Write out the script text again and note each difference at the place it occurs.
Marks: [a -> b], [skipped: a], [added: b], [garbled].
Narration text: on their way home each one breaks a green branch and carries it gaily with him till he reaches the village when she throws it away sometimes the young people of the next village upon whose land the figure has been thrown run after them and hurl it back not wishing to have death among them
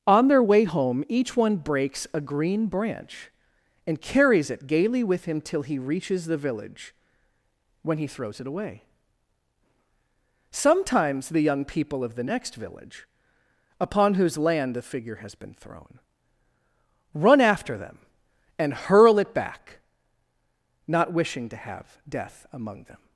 on their way home each one breaks a green branch and carries it gaily with him till he reaches the village when [she -> he] throws it away sometimes the young people of the next village upon whose land the figure has been thrown run after them and hurl it back not wishing to have death among them